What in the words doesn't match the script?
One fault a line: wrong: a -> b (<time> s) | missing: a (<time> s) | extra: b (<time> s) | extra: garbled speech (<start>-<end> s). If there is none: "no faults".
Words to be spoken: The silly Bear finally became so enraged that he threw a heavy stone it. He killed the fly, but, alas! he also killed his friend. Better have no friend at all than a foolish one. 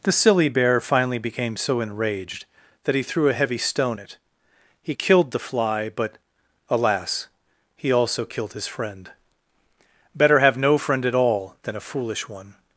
no faults